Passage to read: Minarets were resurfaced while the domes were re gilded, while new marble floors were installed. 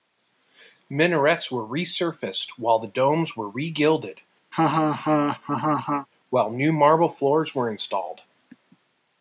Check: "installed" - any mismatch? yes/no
no